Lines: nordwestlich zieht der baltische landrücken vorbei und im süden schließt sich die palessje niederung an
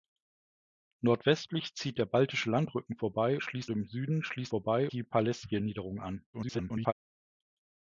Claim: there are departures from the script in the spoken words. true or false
true